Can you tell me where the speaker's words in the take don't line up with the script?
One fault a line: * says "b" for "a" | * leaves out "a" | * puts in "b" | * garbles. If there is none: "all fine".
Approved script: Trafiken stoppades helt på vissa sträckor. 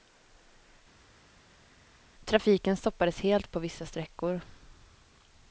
all fine